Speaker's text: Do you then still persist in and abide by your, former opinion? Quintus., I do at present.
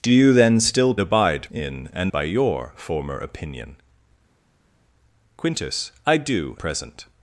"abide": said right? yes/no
no